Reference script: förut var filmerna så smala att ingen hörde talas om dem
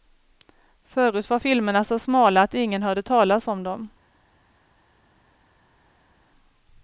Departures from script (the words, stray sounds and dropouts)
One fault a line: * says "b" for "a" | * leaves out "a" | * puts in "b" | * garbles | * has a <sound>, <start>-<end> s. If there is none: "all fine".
all fine